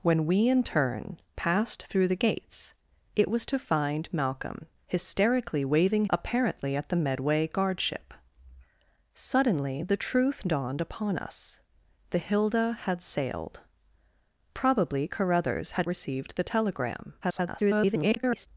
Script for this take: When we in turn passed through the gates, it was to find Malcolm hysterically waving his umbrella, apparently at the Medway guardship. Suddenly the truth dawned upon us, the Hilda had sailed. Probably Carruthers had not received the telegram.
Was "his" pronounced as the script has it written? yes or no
no